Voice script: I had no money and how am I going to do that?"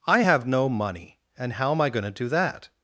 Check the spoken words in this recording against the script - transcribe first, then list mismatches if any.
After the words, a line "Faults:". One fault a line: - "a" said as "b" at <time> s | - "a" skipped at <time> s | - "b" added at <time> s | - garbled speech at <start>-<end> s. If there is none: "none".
I have no money and how am I going to do that?"
Faults:
- "had" said as "have" at 0.2 s